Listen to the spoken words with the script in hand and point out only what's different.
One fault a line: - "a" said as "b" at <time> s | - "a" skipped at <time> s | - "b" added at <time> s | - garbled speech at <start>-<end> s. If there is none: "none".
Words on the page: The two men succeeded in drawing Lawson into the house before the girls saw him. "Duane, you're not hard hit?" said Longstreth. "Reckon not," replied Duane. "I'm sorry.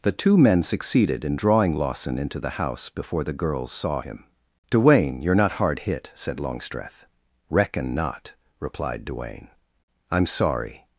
none